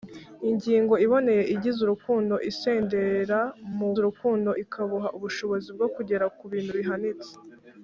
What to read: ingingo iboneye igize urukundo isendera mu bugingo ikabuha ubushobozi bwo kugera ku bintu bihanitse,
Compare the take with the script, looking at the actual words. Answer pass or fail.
fail